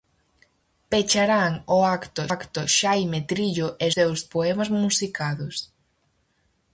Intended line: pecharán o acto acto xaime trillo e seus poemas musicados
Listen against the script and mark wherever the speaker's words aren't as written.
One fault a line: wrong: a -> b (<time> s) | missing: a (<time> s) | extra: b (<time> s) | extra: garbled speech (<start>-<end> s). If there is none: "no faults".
no faults